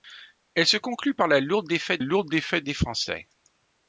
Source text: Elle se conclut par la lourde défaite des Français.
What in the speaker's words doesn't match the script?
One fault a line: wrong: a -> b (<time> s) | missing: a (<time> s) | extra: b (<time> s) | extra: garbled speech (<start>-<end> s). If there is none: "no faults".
extra: lourde défaite (2.0 s)